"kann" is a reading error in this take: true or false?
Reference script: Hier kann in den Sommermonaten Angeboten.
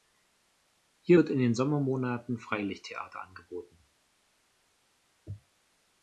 true